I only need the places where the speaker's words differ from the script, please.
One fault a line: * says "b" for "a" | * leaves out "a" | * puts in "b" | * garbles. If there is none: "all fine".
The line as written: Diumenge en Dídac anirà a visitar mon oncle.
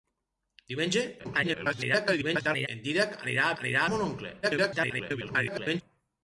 * garbles
* says "anirà" for "visitar"
* garbles